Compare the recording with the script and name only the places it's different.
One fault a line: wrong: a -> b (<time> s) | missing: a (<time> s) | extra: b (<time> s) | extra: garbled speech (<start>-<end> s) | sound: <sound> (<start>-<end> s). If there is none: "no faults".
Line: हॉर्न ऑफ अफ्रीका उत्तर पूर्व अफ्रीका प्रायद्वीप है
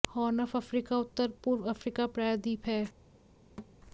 sound: thud (3.6-3.8 s)